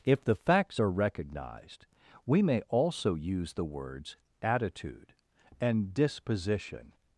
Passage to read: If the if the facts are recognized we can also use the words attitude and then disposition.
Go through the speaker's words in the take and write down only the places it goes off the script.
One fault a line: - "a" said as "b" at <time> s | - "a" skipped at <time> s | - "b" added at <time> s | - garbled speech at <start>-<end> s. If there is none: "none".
- "if the" skipped at 0.4 s
- "can" said as "may" at 2.4 s
- "then" skipped at 5.9 s